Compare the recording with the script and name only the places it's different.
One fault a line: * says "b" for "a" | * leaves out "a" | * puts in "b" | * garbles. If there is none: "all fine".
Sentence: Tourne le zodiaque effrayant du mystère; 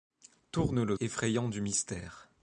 * leaves out "zodiaque"